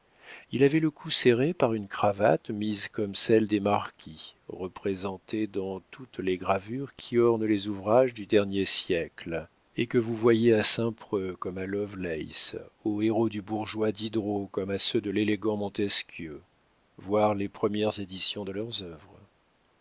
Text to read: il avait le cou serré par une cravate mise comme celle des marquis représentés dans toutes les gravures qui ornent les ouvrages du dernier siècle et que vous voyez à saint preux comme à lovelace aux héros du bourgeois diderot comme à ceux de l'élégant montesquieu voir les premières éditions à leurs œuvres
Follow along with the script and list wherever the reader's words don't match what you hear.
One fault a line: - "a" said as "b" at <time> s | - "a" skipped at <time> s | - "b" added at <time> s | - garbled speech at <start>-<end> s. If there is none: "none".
- "à" said as "de" at 18.4 s